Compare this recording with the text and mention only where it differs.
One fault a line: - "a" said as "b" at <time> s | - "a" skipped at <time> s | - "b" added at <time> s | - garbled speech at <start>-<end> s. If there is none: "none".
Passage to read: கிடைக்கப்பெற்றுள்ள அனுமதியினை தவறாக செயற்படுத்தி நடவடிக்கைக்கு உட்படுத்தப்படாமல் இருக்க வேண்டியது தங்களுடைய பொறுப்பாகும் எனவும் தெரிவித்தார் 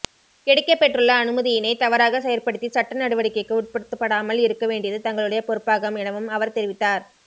- "சட்ட" added at 2.7 s
- "அவர்" added at 6.3 s